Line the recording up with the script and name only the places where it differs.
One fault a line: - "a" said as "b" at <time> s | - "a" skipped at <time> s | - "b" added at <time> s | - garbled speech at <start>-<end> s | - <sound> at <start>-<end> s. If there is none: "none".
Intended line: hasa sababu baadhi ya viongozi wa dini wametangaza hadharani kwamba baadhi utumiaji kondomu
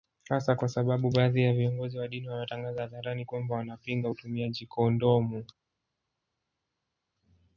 - "kwa" added at 0.6 s
- "baadhi" said as "wanapinga" at 3.5 s